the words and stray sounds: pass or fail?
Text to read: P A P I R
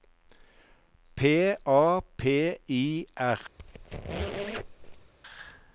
fail